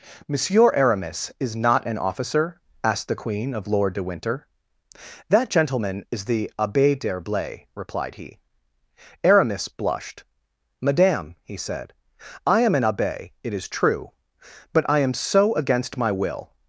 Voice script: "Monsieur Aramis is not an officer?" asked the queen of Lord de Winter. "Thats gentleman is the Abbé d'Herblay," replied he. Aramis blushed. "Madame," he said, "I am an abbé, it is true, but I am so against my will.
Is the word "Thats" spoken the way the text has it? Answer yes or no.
no